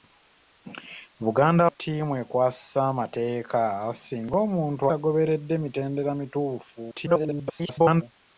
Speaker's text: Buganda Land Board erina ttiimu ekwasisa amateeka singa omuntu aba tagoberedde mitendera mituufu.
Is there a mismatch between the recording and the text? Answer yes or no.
yes